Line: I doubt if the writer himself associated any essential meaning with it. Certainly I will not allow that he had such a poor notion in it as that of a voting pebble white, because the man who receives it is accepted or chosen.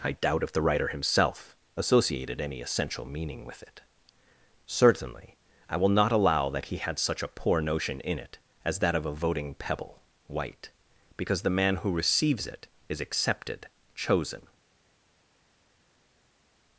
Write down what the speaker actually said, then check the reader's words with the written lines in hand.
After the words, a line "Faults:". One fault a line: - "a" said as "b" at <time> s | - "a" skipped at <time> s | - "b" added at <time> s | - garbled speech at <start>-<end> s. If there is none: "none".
I doubt if the writer himself associated any essential meaning with it. Certainly I will not allow that he had such a poor notion in it as that of a voting pebble white, because the man who receives it is accepted chosen.
Faults:
- "or" skipped at 13.7 s